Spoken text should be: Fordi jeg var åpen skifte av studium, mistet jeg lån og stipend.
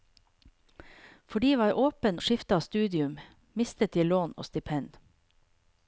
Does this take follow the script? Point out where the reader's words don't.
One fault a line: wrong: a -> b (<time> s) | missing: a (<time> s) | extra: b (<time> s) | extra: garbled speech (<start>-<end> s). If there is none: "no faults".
no faults